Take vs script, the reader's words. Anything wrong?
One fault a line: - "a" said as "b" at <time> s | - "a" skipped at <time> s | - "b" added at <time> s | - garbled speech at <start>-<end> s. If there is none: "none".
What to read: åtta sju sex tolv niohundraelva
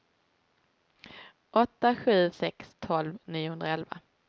none